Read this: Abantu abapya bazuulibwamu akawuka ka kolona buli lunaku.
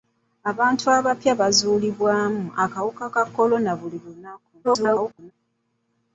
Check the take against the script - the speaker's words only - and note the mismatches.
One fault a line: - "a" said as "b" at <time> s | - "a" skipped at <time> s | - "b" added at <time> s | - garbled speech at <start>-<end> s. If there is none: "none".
- garbled speech at 4.6-5.3 s